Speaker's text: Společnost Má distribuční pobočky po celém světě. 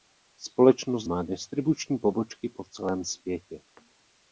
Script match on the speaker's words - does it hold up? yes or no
yes